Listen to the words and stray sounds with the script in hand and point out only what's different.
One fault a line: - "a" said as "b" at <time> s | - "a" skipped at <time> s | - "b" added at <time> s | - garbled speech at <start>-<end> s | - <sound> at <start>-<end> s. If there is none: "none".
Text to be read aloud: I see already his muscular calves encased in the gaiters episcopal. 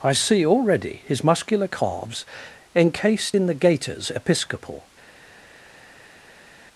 none